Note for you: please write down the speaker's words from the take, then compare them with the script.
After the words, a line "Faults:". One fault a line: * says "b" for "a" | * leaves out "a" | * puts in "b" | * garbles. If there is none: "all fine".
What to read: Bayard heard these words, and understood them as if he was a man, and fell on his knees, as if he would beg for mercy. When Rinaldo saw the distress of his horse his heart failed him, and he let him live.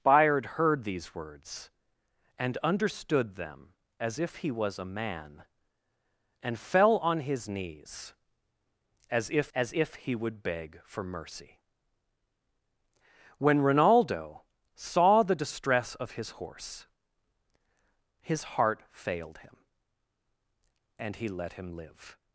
Bayard heard these words, and understood them as if he was a man, and fell on his knees, as if as if he would beg for mercy. When Rinaldo saw the distress of his horse his heart failed him, and he let him live.
Faults:
* puts in "as if"